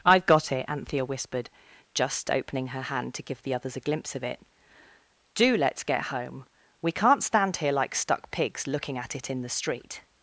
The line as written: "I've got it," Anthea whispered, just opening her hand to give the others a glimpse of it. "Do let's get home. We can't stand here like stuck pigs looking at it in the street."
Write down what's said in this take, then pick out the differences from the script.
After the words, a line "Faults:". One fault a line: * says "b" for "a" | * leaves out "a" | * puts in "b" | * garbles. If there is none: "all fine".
"I've got it," Anthea whispered, just opening her hand to give the others a glimpse of it. "Do let's get home. We can't stand here like stuck pigs looking at it in the street."
Faults:
all fine